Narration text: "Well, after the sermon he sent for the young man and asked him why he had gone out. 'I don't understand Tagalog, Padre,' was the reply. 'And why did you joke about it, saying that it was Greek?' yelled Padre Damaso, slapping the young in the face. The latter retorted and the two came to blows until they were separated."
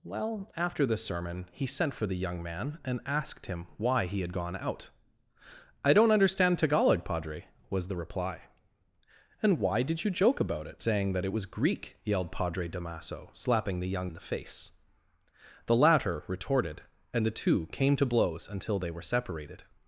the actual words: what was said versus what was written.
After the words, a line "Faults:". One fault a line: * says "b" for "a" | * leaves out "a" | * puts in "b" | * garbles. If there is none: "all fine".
"Well, after the sermon he sent for the young man and asked him why he had gone out. 'I don't understand Tagalog, Padre,' was the reply. 'And why did you joke about it, saying that it was Greek?' yelled Padre Damaso, slapping the young in the face. The latter retorted and the two came to blows until they were separated."
Faults:
all fine